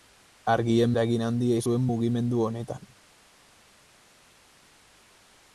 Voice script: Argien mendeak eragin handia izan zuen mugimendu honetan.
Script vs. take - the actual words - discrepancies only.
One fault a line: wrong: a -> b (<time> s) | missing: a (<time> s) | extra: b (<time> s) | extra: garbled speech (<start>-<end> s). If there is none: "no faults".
missing: mendeak (0.9 s)
missing: izan (1.6 s)